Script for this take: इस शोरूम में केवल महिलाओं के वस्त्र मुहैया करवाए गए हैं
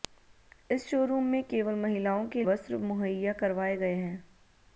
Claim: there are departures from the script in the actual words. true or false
false